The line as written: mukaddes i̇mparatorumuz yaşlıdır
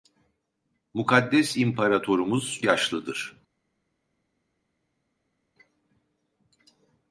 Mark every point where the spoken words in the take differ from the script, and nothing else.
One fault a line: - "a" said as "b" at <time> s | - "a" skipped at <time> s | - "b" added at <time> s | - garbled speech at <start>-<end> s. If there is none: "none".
none